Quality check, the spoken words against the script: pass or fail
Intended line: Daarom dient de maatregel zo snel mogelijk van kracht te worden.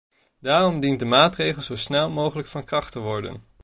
pass